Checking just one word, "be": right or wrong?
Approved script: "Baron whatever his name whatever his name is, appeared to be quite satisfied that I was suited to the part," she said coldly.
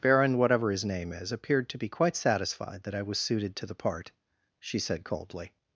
right